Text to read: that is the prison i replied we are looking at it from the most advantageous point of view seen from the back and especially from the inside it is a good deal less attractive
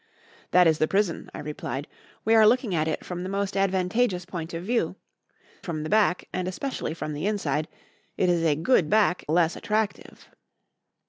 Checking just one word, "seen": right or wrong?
wrong